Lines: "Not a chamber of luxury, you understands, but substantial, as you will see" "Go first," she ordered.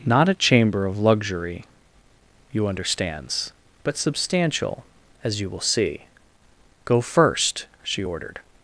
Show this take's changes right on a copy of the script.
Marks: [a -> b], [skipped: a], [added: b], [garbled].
"Not a chamber of luxury, you understands, but substantial, as you will see" "Go first," she ordered.